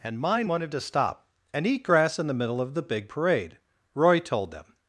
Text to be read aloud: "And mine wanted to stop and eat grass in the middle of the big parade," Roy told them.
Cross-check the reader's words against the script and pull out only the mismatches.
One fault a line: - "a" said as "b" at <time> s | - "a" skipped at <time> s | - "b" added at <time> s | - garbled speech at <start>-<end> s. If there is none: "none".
none